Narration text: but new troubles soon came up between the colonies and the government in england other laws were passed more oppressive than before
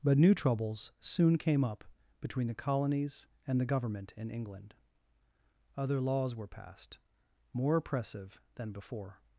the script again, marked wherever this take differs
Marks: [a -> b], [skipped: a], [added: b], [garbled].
but new troubles soon came up between the colonies and the government in england other laws were passed more oppressive than before